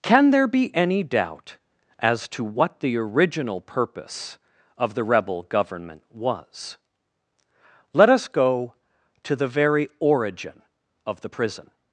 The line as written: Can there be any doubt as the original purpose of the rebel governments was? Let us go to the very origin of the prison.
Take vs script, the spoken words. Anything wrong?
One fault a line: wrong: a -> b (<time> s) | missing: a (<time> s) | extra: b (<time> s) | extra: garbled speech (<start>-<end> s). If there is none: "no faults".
extra: to what (2.3 s)
wrong: governments -> government (5.4 s)